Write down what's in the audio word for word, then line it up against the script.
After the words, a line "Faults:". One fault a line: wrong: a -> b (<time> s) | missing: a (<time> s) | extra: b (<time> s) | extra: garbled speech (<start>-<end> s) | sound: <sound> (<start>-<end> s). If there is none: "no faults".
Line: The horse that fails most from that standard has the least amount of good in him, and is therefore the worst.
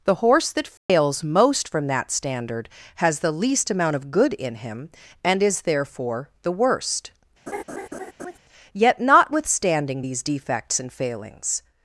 The horse that fails most from that standard has the least amount of good in him, and is therefore the worst. Yet, notwithstanding these defects and failings
Faults:
sound: dropout (0.8-0.9 s)
sound: laugh (7.5-8.4 s)
extra: Yet notwithstanding these defects and failings (8.7 s)